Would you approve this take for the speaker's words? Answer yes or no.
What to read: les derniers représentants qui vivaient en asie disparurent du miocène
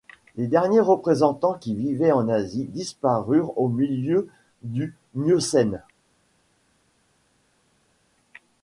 no